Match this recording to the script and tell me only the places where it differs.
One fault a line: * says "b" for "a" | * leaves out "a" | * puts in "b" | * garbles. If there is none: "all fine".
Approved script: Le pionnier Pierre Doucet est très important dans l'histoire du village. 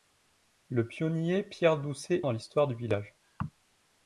* leaves out "est très important"